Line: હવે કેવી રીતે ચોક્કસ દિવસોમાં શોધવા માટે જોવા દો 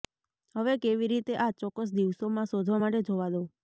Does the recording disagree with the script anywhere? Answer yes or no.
yes